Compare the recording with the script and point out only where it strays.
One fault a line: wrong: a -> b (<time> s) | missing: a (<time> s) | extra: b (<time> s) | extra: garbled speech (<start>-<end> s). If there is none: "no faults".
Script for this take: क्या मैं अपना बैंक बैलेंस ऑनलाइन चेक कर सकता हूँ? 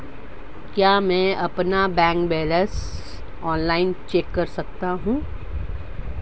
no faults